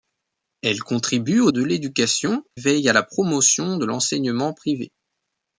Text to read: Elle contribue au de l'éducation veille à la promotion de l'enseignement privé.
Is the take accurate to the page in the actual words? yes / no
yes